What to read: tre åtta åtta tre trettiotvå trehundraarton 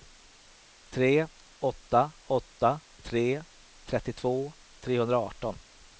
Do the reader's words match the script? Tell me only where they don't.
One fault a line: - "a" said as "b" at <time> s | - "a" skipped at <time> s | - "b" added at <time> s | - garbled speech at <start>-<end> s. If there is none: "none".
none